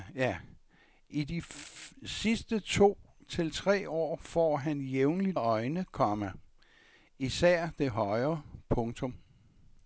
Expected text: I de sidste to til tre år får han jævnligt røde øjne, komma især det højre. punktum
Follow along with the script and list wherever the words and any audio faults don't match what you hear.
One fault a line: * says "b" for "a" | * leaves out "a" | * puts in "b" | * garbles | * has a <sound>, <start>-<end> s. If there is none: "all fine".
* leaves out "røde"